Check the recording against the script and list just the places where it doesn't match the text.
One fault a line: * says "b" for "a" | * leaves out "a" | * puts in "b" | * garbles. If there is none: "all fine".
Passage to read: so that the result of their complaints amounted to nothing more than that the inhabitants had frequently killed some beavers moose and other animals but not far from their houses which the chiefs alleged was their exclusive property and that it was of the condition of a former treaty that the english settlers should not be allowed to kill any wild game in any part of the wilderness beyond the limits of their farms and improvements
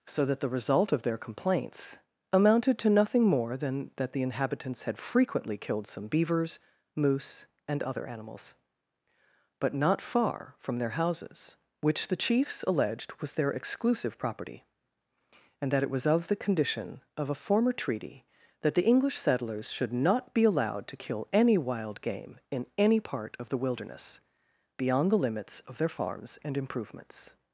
all fine